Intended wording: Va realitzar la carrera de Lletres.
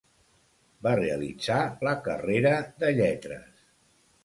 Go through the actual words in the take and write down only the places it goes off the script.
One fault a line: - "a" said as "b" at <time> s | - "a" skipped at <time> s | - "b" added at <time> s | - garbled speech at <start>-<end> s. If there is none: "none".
none